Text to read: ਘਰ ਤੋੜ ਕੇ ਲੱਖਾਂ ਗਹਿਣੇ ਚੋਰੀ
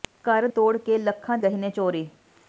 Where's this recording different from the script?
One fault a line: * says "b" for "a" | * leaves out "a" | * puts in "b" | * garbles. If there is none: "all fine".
all fine